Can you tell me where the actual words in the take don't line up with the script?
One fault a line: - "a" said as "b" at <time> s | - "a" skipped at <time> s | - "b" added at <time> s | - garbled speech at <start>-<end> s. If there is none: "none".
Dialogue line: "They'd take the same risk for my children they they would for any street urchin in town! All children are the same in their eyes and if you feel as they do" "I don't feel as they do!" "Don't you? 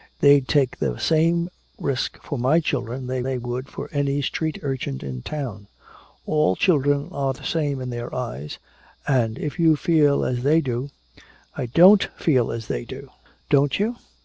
none